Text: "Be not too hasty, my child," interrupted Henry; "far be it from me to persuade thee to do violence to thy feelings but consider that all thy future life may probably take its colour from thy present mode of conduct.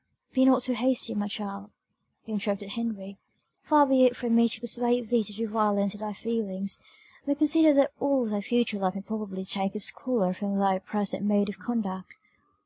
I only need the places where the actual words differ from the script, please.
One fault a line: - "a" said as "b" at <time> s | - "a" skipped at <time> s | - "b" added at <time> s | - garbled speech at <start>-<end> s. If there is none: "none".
none